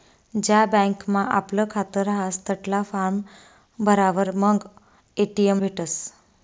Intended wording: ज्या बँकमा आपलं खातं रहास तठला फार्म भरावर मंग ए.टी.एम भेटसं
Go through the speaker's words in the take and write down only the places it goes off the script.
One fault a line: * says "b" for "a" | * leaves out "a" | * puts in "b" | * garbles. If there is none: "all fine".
all fine